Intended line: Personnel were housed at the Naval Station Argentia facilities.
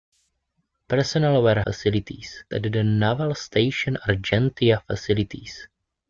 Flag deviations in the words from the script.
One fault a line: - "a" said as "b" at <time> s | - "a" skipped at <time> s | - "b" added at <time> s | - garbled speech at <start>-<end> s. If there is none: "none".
- "housed" said as "facilities" at 1.6 s